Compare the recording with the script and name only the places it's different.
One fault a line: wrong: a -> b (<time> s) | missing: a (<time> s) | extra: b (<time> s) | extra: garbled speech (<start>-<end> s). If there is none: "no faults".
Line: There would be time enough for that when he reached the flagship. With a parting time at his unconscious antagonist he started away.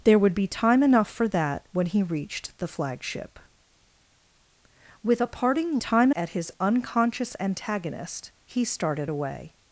no faults